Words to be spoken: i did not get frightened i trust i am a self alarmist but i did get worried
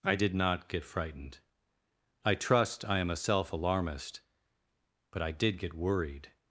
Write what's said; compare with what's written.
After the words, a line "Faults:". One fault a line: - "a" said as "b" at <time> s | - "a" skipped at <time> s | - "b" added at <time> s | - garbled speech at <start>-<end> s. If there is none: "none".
i did not get frightened i trust i am a self alarmist but i did get worried
Faults:
none